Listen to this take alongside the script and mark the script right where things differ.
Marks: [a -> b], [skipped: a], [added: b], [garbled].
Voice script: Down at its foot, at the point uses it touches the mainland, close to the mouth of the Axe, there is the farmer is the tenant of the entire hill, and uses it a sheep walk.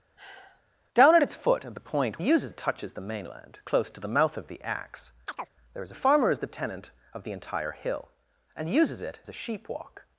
Down at its foot, at the point uses it touches the mainland, close to the mouth of the Axe, there is the farmer is the tenant of the entire hill, and uses it a sheep walk.